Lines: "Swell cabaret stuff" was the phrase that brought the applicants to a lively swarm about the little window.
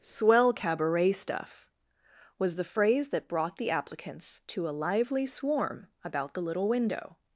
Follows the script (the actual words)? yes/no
yes